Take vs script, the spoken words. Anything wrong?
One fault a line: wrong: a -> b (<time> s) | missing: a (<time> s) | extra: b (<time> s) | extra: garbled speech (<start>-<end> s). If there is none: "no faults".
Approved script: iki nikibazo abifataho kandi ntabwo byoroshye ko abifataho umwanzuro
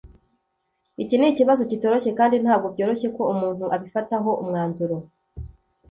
wrong: abifataho -> kitoroshye (1.7 s)
extra: umuntu (3.3 s)